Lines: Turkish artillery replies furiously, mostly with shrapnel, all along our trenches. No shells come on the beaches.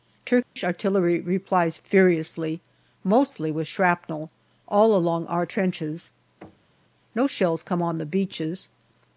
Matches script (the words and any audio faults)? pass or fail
fail